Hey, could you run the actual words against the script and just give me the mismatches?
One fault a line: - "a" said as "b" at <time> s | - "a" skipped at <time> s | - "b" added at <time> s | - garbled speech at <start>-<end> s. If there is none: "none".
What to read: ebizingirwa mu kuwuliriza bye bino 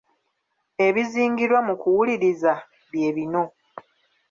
none